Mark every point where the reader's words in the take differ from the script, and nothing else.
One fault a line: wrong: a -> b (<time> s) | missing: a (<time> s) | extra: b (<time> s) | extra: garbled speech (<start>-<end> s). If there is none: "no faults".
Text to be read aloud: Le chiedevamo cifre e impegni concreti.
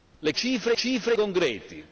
missing: chiedevamo (0.3 s)
wrong: impegni -> cifre (0.7 s)